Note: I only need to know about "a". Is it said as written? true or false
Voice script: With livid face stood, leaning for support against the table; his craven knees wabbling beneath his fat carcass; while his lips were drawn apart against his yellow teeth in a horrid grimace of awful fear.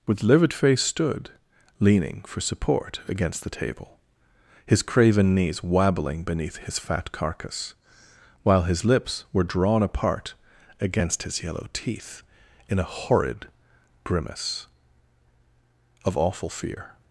true